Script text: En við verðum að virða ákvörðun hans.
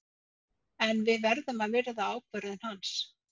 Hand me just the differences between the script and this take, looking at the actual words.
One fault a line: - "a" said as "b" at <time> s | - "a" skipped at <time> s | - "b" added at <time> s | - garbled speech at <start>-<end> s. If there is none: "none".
none